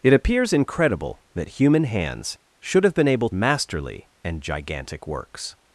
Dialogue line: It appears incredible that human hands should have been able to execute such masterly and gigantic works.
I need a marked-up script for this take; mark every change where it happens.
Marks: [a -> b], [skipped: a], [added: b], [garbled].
It appears incredible that human hands should have been able [skipped: to execute such] masterly and gigantic works.